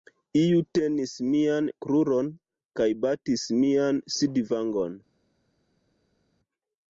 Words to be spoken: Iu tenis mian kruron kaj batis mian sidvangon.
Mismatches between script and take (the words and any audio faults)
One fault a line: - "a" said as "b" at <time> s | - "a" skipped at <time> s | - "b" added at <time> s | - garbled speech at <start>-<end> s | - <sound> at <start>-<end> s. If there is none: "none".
none